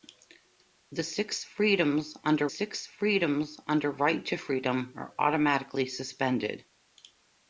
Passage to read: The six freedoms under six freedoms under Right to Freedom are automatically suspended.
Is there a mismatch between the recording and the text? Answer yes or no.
no